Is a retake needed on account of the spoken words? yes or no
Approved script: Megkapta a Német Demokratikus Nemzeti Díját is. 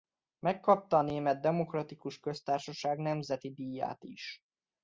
yes